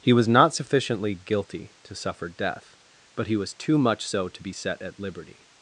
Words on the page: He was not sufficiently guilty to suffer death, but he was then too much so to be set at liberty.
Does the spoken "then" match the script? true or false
false